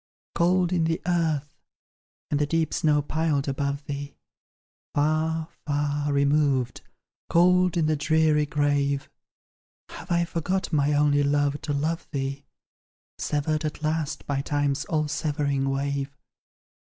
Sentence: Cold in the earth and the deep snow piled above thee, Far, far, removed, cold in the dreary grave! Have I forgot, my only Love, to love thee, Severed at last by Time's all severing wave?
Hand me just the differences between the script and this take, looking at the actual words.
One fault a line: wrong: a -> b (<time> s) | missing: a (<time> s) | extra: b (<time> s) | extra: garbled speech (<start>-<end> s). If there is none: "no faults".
no faults